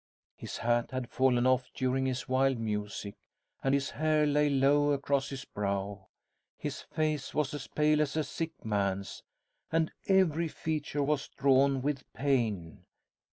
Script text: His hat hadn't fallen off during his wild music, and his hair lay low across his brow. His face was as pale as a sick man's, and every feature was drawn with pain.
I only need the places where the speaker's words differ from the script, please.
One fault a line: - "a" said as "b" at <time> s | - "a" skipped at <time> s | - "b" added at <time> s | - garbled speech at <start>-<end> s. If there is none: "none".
- "hadn't" said as "had" at 0.9 s